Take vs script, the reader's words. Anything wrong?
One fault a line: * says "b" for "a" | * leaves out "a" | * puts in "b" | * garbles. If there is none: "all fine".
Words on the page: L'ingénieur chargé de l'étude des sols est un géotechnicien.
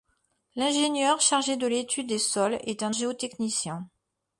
all fine